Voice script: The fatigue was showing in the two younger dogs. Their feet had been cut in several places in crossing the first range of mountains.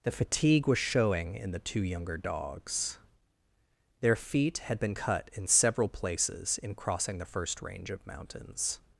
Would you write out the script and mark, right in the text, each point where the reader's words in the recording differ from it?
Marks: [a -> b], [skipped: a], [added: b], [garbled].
The fatigue was showing in the two younger dogs. Their feet had been cut in several places in crossing the first range of mountains.